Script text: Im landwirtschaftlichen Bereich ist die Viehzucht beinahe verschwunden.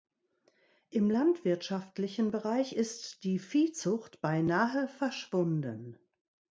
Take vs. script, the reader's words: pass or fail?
pass